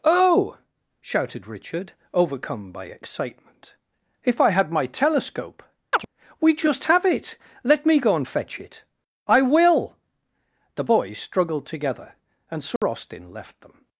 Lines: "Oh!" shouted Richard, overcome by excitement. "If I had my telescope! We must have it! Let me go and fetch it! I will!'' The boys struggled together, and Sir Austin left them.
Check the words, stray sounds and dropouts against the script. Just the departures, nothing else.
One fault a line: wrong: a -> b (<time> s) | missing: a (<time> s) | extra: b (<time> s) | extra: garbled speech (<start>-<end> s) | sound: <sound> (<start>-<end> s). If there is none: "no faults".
sound: chirp (5.9-6.1 s)
wrong: must -> just (6.5 s)
sound: dropout (12.8-12.8 s)